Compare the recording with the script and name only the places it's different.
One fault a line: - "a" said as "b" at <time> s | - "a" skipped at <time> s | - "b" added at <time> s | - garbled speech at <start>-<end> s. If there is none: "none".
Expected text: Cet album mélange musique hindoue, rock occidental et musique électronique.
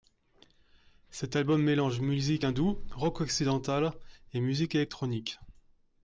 none